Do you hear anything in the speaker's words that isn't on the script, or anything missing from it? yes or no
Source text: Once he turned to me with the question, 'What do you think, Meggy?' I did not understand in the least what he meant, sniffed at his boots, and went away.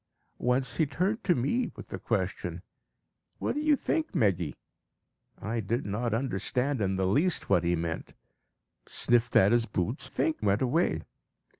yes